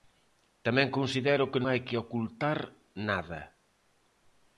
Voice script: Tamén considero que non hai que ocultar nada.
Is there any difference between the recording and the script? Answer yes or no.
yes